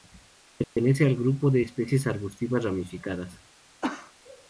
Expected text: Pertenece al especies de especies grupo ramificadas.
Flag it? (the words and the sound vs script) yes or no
yes